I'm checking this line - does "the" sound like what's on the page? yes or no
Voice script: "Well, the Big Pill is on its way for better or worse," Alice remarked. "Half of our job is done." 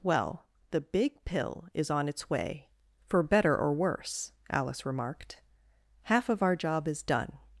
yes